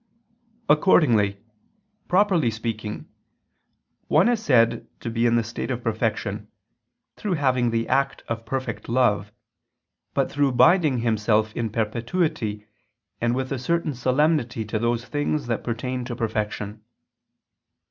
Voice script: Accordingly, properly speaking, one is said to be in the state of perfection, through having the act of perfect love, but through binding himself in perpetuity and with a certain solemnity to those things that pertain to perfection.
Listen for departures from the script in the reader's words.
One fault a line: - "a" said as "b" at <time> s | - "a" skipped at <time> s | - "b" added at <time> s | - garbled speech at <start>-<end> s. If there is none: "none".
none